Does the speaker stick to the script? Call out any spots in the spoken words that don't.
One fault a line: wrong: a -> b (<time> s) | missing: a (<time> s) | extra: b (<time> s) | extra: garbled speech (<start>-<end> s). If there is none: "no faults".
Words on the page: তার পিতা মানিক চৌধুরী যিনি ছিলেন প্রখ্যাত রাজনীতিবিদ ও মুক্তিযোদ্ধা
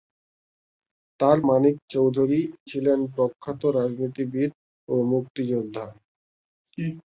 missing: পিতা (1.4 s)
missing: যিনি (2.4 s)